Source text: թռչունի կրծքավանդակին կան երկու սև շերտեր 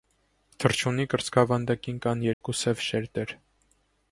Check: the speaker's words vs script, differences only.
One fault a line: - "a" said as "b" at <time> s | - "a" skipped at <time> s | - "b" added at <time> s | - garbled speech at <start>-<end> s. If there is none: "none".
none